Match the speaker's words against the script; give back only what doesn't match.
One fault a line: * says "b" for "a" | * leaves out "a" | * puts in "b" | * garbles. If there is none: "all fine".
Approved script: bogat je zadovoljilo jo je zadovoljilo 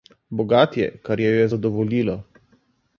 * says "kar" for "zadovoljilo"